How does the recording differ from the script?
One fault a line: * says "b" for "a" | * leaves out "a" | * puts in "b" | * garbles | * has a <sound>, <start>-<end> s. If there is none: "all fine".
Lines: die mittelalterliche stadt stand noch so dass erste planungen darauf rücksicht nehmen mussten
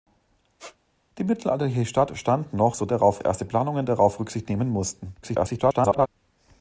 * has a squeak, 0.6-0.8 s
* says "darauf" for "dass"
* garbles